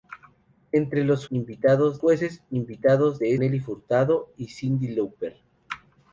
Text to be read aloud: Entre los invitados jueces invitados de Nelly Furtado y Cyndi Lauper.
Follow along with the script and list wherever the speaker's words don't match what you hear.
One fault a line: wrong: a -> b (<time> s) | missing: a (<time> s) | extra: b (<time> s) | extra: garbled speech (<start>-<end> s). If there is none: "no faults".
no faults